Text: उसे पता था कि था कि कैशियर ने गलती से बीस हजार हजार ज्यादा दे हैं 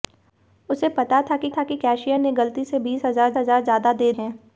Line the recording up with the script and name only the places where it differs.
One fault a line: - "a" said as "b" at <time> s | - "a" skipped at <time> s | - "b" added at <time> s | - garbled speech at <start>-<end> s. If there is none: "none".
none